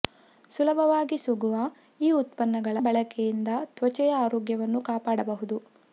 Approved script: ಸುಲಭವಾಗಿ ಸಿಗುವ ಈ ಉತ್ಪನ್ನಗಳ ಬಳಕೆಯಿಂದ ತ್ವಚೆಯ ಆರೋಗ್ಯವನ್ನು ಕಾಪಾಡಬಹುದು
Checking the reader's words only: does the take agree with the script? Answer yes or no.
yes